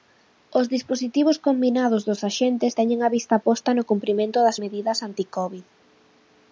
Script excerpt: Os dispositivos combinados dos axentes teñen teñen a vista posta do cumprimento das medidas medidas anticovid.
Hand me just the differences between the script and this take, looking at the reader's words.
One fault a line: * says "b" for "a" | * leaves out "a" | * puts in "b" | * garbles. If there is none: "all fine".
* leaves out "teñen"
* says "no" for "do"
* leaves out "medidas"